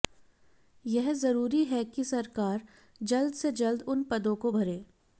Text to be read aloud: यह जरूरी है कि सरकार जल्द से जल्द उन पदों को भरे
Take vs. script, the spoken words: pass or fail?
pass